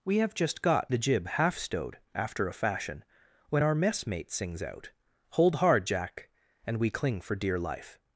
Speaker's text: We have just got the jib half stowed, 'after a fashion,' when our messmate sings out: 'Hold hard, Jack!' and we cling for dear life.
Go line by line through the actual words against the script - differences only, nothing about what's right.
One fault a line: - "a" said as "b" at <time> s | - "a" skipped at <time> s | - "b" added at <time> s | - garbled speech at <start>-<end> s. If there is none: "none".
none